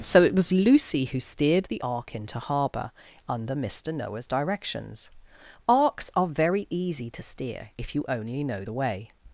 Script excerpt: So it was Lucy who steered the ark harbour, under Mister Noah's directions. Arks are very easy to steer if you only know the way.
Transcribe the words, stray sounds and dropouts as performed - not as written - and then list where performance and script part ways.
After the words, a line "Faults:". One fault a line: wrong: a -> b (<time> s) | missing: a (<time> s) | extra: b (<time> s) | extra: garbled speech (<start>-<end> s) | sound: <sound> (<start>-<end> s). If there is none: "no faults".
So it was Lucy who steered the ark into harbour, under Mister Noah's directions. Arks are very easy to steer if you only know the way.
Faults:
extra: into (2.1 s)